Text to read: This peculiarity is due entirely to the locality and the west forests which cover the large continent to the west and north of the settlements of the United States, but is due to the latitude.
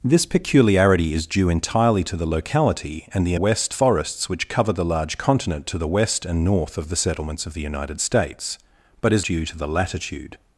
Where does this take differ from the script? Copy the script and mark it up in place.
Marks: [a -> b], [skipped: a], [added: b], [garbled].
This peculiarity is due entirely to the locality and the west forests which cover the large continent to the west and north of the settlements of the United States, but is due to the latitude.